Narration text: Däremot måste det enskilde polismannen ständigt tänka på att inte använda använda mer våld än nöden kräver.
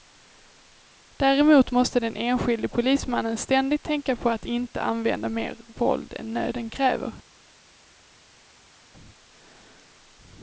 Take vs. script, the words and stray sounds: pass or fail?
fail